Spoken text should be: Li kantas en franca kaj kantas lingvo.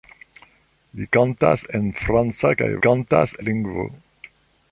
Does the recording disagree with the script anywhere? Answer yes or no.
no